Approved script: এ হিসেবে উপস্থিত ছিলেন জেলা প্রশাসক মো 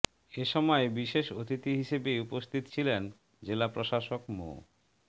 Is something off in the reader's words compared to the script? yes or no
yes